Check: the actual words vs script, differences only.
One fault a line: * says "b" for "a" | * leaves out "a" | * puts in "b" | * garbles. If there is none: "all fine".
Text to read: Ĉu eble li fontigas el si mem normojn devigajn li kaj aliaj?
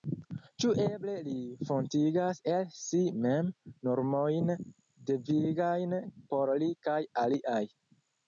* puts in "por"